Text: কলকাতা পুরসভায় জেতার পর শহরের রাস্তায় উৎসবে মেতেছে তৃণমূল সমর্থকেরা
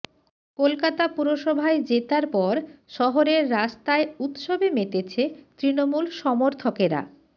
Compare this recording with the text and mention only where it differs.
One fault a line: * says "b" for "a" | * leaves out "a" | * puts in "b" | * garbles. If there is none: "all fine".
all fine